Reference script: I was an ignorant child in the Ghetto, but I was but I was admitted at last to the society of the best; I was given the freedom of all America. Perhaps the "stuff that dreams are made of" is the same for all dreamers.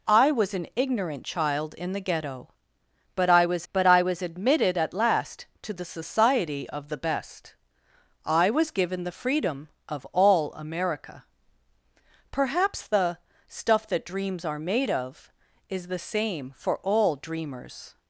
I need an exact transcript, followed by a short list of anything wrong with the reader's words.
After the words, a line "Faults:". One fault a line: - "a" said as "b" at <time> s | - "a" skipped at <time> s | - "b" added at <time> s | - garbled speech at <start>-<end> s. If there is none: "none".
I was an ignorant child in the Ghetto, but I was but I was admitted at last to the society of the best; I was given the freedom of all America. Perhaps the "stuff that dreams are made of" is the same for all dreamers.
Faults:
none